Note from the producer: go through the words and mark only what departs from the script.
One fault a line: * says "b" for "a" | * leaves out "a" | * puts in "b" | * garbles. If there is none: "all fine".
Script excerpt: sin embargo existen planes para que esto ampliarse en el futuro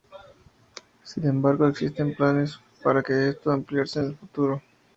all fine